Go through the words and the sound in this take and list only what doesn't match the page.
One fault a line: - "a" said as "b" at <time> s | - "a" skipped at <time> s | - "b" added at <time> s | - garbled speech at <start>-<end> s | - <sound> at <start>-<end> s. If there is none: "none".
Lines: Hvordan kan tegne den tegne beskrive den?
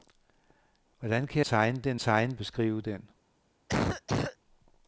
- cough at 3.7-4.4 s